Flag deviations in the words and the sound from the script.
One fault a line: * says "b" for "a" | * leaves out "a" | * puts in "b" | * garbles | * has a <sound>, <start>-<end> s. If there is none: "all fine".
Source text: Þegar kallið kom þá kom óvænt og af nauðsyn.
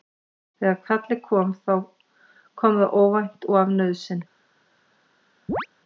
* puts in "það"
* has a chirp, 5.5-5.7 s